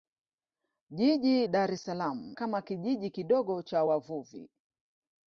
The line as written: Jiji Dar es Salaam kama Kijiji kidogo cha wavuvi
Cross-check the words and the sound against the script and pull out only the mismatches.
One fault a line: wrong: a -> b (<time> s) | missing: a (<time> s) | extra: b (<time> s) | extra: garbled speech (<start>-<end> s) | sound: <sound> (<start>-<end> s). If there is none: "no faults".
no faults